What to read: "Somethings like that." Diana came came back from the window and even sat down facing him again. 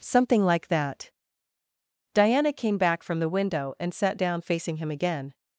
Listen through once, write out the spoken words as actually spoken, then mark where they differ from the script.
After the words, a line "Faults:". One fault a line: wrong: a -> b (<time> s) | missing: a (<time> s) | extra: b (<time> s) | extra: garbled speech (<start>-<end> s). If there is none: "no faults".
"Something like that." Diana came back from the window and sat down facing him again.
Faults:
wrong: Somethings -> Something (0.0 s)
missing: came (2.8 s)
missing: even (3.9 s)